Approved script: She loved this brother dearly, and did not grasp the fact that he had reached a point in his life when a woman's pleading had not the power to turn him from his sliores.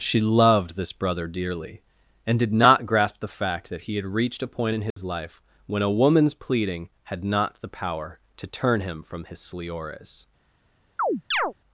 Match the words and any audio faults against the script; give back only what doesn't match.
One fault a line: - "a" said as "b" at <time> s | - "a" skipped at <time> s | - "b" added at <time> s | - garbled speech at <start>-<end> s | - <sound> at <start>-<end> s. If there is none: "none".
- dropout at 4.9-5.0 s
- chirp at 11.0-11.5 s